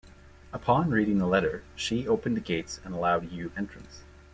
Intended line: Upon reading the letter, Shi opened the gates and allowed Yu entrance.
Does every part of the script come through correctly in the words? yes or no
yes